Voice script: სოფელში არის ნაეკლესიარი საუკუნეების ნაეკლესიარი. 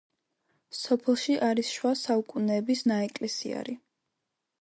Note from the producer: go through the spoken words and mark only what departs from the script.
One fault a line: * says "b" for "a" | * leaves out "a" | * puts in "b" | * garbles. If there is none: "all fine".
* says "შუა" for "ნაეკლესიარი"